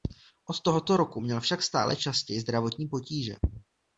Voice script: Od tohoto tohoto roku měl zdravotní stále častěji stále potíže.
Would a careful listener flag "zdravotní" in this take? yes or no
yes